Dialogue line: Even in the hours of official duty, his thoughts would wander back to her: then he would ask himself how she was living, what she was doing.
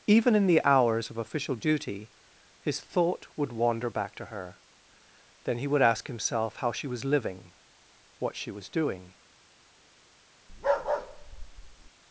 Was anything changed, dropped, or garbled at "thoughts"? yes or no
yes